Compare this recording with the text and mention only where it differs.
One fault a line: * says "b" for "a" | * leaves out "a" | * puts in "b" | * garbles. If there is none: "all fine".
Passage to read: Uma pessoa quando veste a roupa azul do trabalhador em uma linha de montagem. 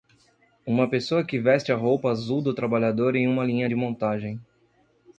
* says "que" for "quando"